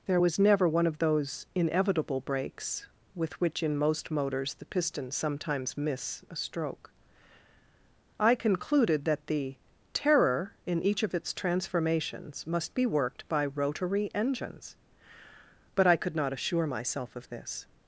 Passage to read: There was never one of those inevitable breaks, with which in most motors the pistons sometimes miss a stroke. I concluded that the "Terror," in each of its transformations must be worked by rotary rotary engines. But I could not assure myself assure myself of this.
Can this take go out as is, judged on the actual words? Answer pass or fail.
fail